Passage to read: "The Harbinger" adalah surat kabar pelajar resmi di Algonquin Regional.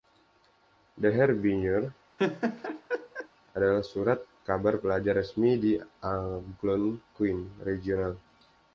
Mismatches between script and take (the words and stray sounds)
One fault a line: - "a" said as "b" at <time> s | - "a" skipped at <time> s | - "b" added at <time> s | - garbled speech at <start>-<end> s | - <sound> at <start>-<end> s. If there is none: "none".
- laugh at 2.2-3.3 s